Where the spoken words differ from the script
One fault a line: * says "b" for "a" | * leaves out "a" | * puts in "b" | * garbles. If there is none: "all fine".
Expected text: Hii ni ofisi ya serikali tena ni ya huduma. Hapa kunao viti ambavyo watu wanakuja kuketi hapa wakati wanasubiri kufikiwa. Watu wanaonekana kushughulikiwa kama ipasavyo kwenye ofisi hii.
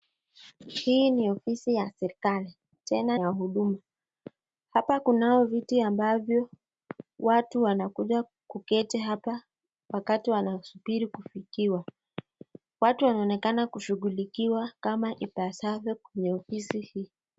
* leaves out "ni"